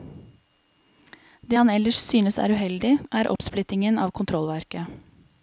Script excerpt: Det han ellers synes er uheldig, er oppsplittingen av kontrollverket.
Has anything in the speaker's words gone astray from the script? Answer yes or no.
no